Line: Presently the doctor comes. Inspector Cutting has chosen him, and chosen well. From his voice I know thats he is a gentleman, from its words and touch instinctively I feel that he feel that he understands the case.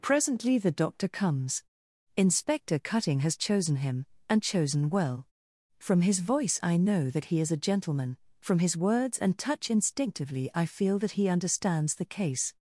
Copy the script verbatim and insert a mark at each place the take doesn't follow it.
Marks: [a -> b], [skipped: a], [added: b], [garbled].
Presently the doctor comes. Inspector Cutting has chosen him, and chosen well. From his voice I know [thats -> that] he is a gentleman, from [its -> his] words and touch instinctively I feel that he [skipped: feel that he] understands the case.